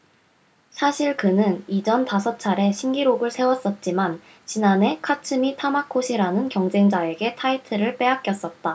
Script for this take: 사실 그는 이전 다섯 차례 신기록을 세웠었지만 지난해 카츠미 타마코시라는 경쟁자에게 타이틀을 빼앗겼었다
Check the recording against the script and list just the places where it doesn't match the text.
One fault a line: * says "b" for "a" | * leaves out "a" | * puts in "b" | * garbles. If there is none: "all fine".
all fine